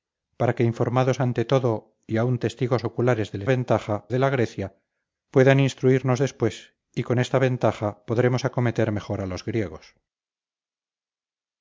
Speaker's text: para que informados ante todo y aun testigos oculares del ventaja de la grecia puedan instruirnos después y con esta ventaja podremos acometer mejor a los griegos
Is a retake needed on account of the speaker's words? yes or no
no